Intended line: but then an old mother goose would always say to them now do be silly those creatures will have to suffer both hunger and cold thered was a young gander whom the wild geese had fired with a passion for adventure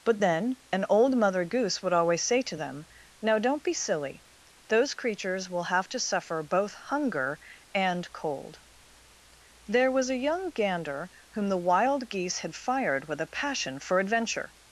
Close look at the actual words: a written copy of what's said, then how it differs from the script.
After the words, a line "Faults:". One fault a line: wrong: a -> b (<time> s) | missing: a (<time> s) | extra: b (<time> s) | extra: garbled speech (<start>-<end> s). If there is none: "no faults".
but then an old mother goose would always say to them now don't be silly those creatures will have to suffer both hunger and cold there was a young gander whom the wild geese had fired with a passion for adventure
Faults:
wrong: do -> don't (3.4 s)
wrong: thered -> there (9.7 s)